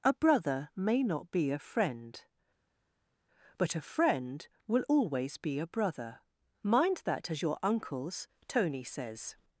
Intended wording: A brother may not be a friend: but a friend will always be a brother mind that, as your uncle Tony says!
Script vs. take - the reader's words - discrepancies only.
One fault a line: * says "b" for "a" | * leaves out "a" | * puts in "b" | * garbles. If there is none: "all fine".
* says "uncles" for "uncle"